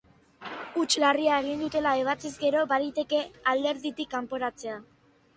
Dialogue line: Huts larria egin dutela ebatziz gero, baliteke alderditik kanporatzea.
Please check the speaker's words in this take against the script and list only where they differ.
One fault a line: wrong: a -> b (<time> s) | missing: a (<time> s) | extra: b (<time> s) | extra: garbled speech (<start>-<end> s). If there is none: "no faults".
no faults